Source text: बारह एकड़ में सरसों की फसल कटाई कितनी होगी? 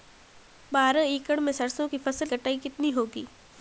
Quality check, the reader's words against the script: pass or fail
pass